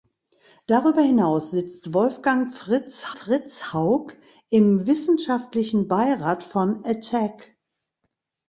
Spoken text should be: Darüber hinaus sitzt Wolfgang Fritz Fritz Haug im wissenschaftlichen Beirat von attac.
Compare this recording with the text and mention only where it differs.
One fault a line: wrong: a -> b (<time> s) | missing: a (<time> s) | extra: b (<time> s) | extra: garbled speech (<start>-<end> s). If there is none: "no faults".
no faults